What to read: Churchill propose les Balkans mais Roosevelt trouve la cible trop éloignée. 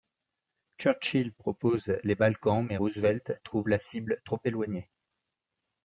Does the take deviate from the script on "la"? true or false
false